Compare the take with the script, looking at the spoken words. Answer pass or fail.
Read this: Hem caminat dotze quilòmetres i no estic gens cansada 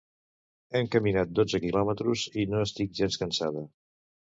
pass